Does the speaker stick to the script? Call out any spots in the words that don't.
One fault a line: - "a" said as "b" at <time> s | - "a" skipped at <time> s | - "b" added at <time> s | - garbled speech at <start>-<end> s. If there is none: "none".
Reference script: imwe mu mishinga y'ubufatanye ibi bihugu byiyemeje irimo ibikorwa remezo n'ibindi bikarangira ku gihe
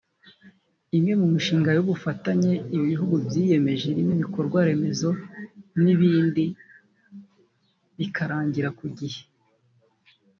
none